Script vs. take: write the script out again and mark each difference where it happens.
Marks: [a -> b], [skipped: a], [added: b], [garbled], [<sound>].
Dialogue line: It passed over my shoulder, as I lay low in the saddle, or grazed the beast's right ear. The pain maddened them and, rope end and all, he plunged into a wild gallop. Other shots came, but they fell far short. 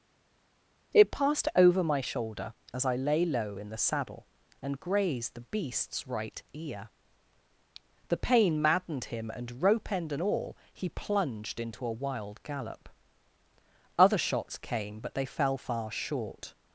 It passed over my shoulder, as I lay low in the saddle, [or -> and] grazed the beast's right ear. The pain maddened [them -> him] and, rope end and all, he plunged into a wild gallop. Other shots came, but they fell far short.